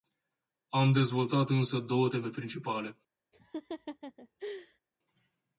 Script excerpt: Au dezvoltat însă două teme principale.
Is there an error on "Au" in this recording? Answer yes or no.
yes